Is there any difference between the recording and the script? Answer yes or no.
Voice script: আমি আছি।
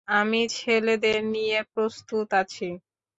yes